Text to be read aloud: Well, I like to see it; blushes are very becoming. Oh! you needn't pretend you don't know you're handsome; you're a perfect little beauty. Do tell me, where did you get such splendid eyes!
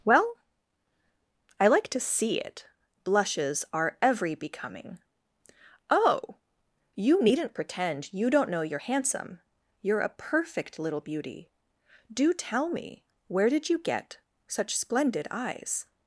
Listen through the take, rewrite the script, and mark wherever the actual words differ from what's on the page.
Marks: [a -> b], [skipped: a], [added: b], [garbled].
Well, I like to see it; blushes are [very -> every] becoming. Oh! you needn't pretend you don't know you're handsome; you're a perfect little beauty. Do tell me, where did you get such splendid eyes!